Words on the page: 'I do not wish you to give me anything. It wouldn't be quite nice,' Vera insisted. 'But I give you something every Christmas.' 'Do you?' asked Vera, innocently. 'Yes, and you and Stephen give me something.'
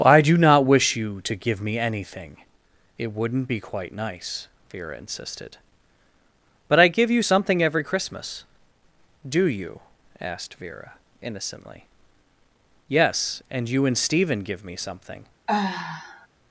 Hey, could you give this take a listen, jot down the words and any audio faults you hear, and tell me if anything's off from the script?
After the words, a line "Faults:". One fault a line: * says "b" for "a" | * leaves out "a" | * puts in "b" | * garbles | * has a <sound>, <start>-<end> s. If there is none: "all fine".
'I do not wish you to give me anything. It wouldn't be quite nice,' Vera insisted. 'But I give you something every Christmas.' 'Do you?' asked Vera, innocently. 'Yes, and you and Stephen give me something.'
Faults:
* has a sigh, 15.5-16.3 s